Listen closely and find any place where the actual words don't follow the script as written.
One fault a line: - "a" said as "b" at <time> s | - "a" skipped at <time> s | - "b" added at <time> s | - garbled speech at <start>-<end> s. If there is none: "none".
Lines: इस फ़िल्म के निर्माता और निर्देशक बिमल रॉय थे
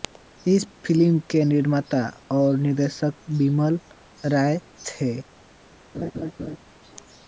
none